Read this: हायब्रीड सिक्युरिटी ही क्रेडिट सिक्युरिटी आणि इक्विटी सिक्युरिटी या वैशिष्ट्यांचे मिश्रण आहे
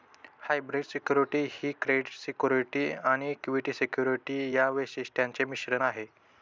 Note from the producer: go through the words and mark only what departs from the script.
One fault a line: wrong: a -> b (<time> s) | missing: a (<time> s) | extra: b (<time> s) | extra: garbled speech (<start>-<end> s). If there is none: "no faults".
no faults